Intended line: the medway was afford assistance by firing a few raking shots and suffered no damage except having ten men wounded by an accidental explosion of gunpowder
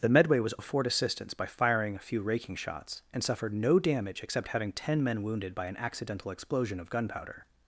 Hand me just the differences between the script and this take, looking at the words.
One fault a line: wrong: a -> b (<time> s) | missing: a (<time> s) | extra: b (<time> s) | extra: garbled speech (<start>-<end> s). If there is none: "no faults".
no faults